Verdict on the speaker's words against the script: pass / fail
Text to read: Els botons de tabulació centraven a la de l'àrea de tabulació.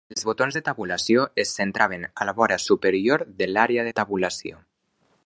fail